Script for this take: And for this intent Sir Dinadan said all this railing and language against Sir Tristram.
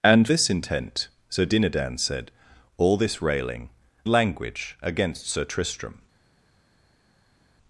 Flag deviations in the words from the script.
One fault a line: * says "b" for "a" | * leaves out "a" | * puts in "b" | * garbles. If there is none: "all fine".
* leaves out "for"
* leaves out "and"